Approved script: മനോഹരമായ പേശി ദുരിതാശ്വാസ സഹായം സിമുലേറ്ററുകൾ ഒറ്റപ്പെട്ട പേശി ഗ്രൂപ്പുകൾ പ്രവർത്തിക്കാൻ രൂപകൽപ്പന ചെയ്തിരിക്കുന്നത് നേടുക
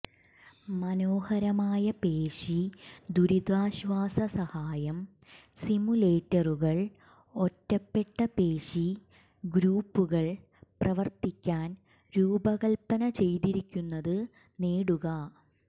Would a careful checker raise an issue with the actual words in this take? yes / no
no